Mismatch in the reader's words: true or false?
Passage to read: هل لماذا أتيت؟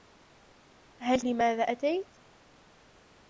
false